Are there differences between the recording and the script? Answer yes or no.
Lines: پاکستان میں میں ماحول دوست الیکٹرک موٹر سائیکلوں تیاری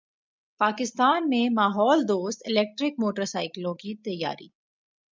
yes